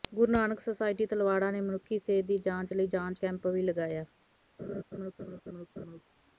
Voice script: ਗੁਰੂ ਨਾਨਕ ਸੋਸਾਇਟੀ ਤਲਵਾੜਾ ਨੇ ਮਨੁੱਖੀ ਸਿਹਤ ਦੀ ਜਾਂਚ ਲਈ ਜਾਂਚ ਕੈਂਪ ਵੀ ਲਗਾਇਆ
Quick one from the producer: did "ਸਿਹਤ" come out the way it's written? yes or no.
yes